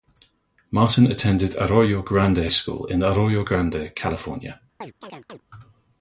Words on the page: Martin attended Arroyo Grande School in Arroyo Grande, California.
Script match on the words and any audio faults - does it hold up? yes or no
no